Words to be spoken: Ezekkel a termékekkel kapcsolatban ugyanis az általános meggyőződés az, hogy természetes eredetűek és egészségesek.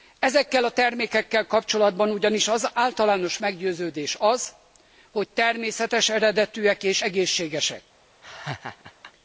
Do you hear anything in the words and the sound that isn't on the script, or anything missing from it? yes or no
yes